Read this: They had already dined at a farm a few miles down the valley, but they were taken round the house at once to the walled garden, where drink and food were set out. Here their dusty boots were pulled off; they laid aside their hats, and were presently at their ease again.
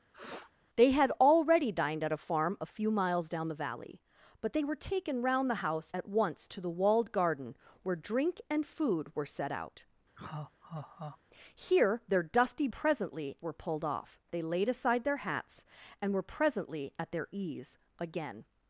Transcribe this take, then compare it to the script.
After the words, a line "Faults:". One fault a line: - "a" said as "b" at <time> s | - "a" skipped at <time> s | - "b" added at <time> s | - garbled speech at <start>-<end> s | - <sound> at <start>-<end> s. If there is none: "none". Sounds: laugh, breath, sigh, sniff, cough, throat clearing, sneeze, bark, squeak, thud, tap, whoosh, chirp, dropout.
They had already dined at a farm a few miles down the valley, but they were taken round the house at once to the walled garden, where drink and food were set out. Here their dusty presently were pulled off; they laid aside their hats, and were presently at their ease again.
Faults:
- sniff at 0.1-0.5 s
- laugh at 10.2-11.2 s
- "boots" said as "presently" at 12.7 s